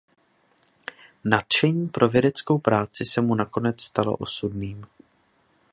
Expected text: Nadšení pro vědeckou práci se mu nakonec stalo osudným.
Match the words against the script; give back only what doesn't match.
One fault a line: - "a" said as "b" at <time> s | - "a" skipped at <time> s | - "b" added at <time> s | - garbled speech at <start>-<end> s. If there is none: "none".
none